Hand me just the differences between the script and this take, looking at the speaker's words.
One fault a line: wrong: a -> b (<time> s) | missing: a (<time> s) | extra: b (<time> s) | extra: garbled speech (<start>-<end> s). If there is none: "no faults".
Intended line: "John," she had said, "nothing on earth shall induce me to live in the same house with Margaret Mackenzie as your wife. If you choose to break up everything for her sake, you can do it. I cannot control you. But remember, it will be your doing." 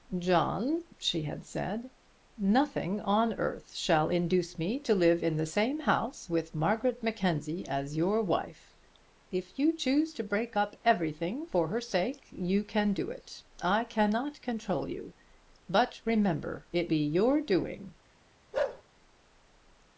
missing: will (16.9 s)